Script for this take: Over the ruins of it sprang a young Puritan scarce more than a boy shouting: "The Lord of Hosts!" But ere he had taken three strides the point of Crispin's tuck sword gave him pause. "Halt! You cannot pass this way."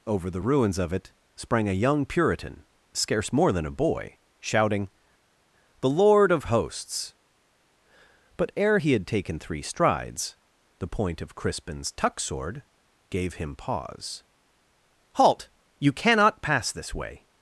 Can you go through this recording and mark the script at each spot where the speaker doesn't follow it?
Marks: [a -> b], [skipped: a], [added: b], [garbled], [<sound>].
Over the ruins of it sprang a young Puritan scarce more than a boy shouting: "The Lord of Hosts!" But ere he had taken three strides the point of Crispin's tuck sword gave him pause. "Halt! You cannot pass this way."